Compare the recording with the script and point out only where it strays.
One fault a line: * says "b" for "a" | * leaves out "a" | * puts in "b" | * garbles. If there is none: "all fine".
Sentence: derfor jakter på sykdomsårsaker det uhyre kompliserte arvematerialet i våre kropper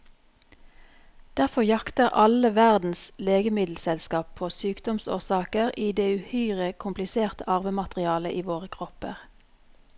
* puts in "alle verdens legemiddelselskap"
* puts in "i"